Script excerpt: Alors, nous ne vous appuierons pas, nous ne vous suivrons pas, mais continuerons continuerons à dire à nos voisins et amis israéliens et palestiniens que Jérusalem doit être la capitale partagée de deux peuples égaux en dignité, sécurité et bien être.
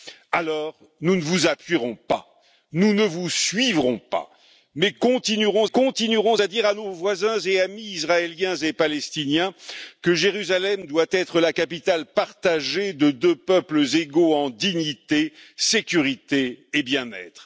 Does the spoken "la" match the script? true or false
true